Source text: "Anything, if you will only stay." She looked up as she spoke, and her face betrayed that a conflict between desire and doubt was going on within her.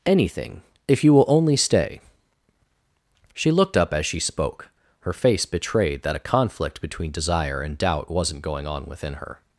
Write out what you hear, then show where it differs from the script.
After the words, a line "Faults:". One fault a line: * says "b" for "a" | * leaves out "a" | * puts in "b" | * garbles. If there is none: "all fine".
"Anything, if you will only stay." She looked up as she spoke, her face betrayed that a conflict between desire and doubt wasn't going on within her.
Faults:
* leaves out "and"
* says "wasn't" for "was"